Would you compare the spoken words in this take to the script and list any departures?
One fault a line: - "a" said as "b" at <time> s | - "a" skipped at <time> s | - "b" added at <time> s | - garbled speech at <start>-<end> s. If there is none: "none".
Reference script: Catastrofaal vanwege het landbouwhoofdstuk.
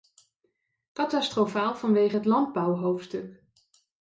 none